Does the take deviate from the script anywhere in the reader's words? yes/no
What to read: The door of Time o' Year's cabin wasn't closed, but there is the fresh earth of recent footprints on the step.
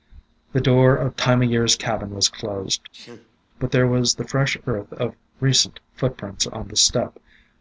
yes